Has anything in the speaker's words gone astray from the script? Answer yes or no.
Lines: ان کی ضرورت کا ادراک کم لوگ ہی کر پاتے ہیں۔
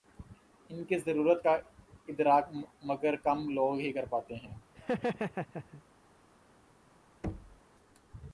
yes